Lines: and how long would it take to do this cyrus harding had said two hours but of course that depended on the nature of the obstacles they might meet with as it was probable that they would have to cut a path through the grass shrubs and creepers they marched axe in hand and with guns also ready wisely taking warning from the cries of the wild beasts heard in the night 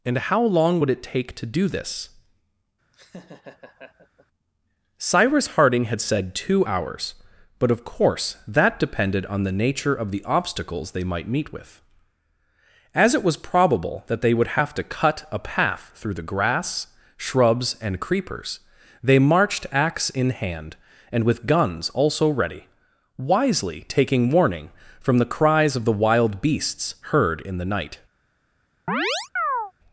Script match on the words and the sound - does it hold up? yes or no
no